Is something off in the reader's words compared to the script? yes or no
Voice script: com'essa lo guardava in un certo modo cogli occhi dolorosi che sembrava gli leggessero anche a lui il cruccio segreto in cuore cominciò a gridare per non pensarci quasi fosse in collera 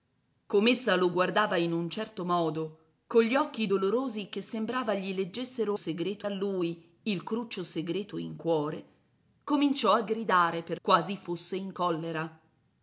yes